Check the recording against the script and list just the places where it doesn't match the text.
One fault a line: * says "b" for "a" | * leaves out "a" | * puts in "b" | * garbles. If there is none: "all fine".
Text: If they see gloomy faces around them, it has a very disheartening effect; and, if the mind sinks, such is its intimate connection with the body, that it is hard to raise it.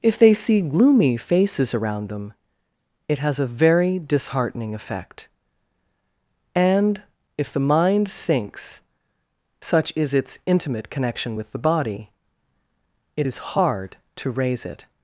* leaves out "that"